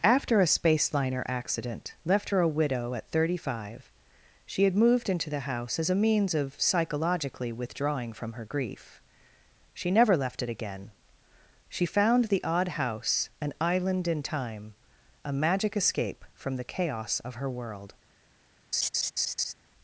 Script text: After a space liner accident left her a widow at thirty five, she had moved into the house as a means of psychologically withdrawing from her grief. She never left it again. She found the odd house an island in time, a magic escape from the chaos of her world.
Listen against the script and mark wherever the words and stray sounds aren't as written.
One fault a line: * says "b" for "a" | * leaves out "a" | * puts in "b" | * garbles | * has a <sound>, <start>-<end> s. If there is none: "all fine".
* has a laugh, 18.7-19.5 s